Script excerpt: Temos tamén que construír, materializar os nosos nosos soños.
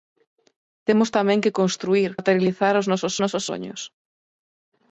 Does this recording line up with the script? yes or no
yes